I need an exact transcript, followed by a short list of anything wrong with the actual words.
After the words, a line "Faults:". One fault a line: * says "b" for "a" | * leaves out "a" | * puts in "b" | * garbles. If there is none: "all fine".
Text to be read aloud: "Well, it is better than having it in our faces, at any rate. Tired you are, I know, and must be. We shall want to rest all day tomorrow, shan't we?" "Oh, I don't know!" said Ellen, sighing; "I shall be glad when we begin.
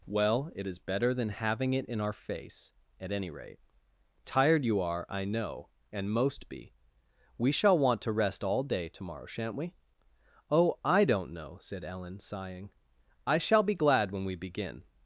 "Well, it is better than having it in our face, at any rate. Tired you are, I know, and most be. We shall want to rest all day tomorrow, shan't we?" "Oh, I don't know!" said Ellen, sighing; "I shall be glad when we begin.
Faults:
* says "face" for "faces"
* says "most" for "must"